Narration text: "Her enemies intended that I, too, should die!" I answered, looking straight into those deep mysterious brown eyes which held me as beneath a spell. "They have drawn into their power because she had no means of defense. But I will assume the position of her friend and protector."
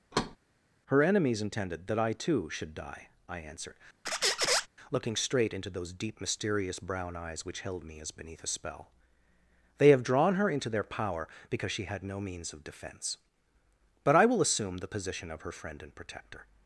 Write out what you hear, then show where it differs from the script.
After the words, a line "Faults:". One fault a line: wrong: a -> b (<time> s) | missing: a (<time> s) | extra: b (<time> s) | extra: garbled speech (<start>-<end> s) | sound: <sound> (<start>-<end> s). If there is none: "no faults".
"Her enemies intended that I, too, should die!" I answered, looking straight into those deep mysterious brown eyes which held me as beneath a spell. "They have drawn her into their power because she had no means of defense. But I will assume the position of her friend and protector."
Faults:
sound: thud (0.1-0.4 s)
sound: squeak (4.1-4.7 s)
extra: her (10.3 s)